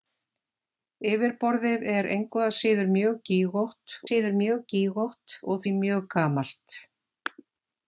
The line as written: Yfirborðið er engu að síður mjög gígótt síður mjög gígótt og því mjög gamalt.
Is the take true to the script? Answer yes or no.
yes